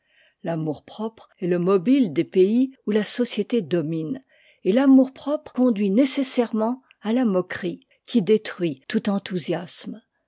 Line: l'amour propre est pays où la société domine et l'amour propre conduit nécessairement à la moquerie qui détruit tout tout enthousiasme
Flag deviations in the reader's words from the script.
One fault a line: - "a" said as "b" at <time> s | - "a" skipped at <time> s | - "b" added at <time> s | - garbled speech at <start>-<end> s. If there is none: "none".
- "le mobile des" added at 1.4 s
- "tout" skipped at 9.1 s